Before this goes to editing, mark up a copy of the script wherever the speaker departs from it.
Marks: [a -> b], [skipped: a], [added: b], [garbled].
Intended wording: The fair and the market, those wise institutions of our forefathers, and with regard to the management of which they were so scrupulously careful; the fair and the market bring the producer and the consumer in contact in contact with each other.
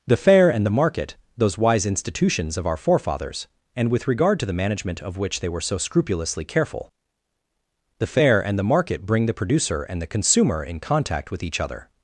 The fair and the market, those wise institutions of our forefathers, and with regard to the management of which they were so scrupulously careful; the fair and the market bring the producer and the consumer in contact [skipped: in contact] with each other.